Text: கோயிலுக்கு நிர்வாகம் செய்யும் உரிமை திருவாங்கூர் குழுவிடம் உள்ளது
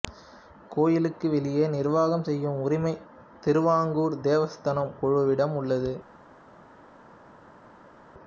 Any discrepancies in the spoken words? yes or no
yes